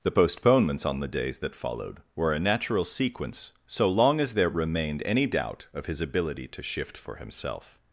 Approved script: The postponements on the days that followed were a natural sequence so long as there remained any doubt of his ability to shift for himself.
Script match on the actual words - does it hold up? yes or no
yes